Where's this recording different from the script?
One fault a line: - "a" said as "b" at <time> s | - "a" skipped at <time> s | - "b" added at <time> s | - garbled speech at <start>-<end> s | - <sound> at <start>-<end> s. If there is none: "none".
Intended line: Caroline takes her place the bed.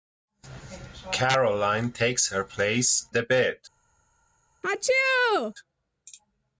- sneeze at 4.6-5.5 s